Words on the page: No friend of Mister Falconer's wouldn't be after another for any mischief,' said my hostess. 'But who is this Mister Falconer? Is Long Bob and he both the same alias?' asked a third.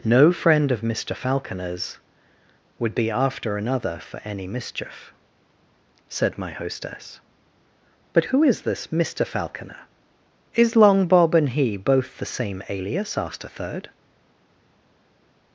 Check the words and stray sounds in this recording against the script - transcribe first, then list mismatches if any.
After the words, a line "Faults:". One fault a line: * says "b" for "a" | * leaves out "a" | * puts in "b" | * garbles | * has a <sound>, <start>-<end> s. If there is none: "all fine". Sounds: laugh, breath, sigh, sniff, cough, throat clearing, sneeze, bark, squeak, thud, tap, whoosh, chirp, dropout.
No friend of Mister Falconer's would be after another for any mischief,' said my hostess. 'But who is this Mister Falconer? Is Long Bob and he both the same alias?' asked a third.
Faults:
* says "would" for "wouldn't"